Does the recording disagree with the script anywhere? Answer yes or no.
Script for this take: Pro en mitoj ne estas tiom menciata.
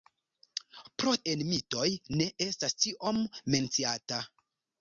no